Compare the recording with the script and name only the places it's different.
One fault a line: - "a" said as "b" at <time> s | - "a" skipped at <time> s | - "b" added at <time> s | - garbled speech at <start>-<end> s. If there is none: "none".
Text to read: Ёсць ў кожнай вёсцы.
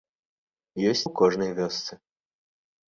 none